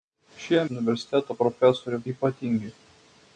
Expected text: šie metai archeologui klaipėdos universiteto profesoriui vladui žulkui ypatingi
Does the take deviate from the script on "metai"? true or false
true